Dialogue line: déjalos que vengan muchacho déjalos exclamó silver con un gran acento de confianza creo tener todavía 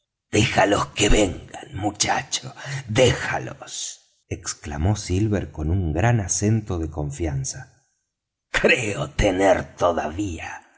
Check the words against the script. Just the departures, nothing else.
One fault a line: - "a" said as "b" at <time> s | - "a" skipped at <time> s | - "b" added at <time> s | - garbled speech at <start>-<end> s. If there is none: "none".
none